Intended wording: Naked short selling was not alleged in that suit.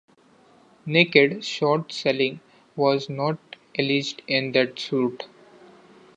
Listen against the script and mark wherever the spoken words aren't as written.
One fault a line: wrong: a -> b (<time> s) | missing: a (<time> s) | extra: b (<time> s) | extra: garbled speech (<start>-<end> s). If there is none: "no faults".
no faults